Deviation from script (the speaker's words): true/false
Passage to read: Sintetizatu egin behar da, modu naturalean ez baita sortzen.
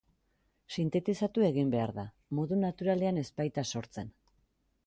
false